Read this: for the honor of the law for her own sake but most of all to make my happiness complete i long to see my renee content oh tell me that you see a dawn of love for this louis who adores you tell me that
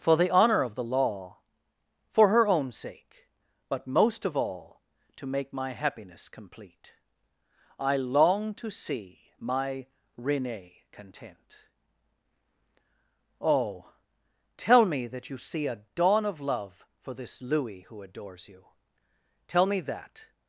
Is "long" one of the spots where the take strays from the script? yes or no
no